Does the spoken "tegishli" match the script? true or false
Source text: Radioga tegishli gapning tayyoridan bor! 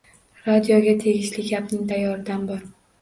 true